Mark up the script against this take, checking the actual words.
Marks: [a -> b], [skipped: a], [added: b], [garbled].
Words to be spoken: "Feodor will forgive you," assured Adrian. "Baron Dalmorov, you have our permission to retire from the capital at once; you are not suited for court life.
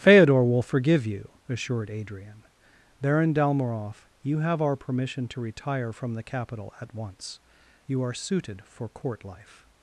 "Feodor will forgive you," assured Adrian. "Baron Dalmorov, you have our permission to retire from the capital at once; you are [skipped: not] suited for court life.